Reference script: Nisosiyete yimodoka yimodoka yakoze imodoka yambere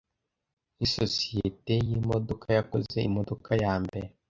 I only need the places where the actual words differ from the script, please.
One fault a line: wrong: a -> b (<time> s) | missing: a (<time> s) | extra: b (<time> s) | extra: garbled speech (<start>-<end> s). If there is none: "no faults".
missing: yimodoka (2.5 s)